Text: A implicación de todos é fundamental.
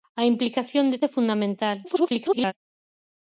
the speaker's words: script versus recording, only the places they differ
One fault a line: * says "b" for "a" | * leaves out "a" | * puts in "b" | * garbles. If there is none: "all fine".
* leaves out "todos"
* garbles